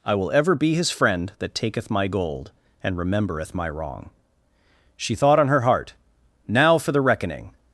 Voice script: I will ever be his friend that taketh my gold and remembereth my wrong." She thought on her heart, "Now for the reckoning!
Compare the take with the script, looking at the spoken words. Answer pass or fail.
pass